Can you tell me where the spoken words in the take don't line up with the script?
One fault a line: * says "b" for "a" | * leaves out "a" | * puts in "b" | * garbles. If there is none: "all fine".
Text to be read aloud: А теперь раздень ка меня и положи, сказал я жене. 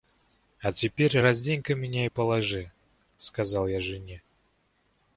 all fine